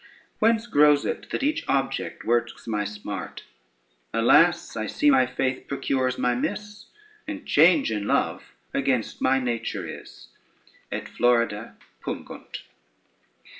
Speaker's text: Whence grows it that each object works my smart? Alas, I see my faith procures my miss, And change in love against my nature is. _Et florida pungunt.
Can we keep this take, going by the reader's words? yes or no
yes